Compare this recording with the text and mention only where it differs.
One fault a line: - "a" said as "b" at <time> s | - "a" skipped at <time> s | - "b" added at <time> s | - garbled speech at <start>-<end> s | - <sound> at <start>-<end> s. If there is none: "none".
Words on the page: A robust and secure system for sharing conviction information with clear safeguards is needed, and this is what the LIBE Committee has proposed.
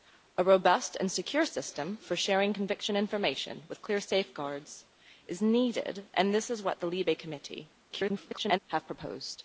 - garbled speech at 7.9-8.6 s